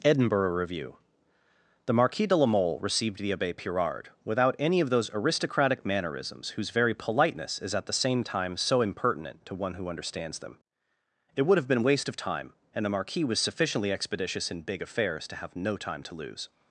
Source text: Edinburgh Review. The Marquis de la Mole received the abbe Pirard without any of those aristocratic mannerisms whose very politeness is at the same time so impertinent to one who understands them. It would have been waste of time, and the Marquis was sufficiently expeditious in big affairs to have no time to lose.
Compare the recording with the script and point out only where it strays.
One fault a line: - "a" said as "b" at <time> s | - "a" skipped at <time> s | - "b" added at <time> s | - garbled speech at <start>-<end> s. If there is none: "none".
none